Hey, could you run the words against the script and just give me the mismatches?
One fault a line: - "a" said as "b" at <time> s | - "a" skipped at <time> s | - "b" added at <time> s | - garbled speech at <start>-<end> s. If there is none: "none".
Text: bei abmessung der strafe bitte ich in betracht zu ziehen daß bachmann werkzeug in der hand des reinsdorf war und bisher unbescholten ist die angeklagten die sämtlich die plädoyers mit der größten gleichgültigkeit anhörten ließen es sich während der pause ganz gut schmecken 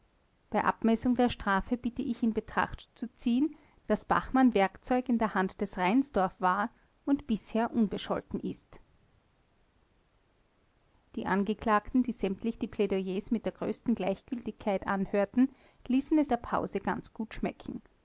- "sich während" skipped at 16.3 s